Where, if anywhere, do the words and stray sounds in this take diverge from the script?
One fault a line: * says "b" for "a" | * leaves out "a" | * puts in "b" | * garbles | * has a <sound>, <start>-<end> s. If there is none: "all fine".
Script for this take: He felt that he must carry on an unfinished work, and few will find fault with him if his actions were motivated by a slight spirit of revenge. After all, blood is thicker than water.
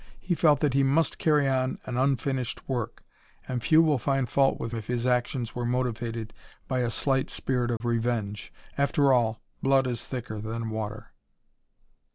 * leaves out "him"
* has a dropout, 7.8-7.8 s